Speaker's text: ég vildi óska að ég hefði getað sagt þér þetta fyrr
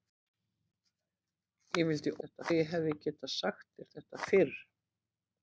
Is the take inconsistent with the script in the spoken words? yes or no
yes